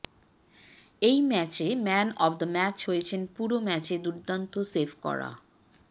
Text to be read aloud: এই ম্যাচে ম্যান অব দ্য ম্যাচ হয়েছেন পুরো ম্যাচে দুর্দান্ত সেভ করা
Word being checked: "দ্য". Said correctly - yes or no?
yes